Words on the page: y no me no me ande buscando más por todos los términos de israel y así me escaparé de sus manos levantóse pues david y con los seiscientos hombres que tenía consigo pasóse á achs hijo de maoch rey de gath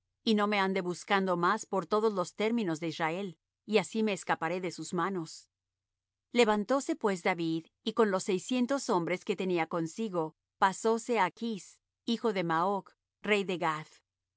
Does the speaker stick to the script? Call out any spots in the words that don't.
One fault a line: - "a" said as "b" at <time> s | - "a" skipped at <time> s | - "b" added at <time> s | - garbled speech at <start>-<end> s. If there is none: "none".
- "no me" skipped at 0.6 s